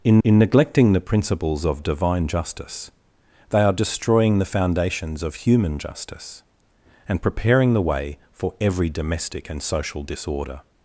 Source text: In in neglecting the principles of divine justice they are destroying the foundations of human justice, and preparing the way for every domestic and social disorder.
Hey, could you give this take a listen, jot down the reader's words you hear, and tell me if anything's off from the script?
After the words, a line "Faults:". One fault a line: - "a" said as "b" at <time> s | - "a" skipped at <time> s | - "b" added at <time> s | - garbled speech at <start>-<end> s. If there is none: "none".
In in neglecting the principles of divine justice they are destroying the foundations of human justice, and preparing the way for every domestic and social disorder.
Faults:
none